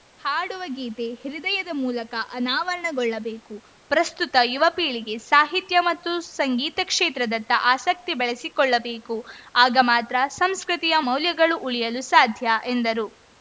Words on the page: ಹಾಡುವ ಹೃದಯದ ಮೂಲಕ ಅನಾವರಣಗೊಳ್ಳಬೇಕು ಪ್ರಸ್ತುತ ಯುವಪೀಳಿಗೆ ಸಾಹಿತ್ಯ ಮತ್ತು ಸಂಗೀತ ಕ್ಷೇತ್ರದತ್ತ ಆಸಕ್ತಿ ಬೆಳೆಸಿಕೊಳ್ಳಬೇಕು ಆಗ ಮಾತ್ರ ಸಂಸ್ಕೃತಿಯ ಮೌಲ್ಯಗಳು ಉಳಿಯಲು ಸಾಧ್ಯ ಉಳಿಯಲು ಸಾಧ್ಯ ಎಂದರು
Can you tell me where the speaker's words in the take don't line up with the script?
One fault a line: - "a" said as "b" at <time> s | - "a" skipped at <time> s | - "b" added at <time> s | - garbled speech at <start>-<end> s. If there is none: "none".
- "ಗೀತೆ" added at 0.7 s
- "ಉಳಿಯಲು ಸಾಧ್ಯ" skipped at 12.5 s